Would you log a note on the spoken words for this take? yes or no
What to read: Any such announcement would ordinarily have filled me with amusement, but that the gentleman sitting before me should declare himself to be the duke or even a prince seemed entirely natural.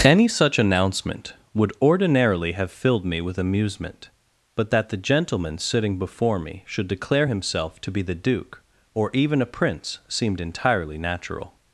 no